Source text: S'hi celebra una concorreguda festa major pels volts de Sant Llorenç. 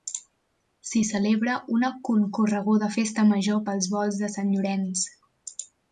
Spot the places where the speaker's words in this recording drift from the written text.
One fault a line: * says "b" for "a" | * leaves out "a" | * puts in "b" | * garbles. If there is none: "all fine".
all fine